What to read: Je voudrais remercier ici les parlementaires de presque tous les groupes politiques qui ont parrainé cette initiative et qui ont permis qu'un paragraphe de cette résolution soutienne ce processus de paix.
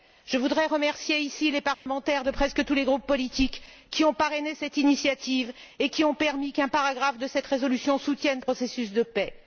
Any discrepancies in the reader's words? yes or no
yes